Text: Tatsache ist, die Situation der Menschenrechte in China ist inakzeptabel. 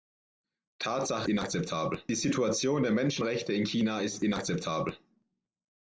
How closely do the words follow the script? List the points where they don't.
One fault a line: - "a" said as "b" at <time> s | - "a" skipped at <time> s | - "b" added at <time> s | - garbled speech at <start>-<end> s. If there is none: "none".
- "ist" said as "inakzeptabel" at 1.3 s